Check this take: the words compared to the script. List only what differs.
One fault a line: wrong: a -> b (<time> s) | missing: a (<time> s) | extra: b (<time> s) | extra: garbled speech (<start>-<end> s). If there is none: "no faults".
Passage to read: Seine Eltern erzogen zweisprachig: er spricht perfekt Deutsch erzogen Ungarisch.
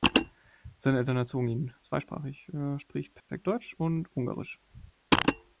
extra: ihn (1.5 s)
wrong: erzogen -> und (3.7 s)